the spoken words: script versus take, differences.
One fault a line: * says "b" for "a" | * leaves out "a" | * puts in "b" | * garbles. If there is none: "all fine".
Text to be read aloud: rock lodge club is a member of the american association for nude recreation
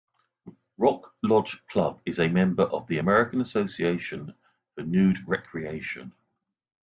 all fine